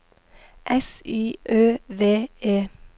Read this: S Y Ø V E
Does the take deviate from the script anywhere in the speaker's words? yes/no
no